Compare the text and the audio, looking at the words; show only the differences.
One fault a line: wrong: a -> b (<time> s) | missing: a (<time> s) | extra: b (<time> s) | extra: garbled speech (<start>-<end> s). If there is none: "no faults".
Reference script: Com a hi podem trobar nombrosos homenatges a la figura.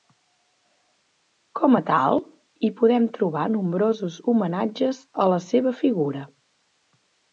extra: tal (1.9 s)
extra: seva (5.5 s)